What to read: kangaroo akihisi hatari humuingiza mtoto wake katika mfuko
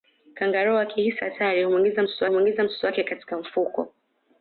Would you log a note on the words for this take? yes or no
yes